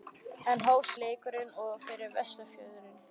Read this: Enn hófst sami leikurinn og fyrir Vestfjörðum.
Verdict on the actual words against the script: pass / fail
fail